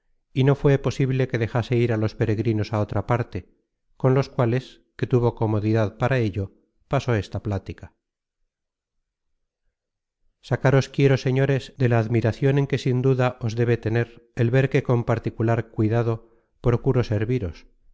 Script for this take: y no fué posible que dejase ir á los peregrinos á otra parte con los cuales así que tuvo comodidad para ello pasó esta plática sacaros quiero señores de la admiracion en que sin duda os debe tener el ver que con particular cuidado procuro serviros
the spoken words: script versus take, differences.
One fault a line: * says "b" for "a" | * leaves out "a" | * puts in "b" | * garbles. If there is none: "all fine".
* leaves out "así"